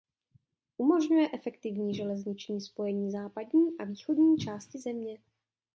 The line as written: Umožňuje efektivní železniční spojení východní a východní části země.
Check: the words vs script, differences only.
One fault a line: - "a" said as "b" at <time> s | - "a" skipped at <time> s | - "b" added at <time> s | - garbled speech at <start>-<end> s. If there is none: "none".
- "východní" said as "západní" at 3.1 s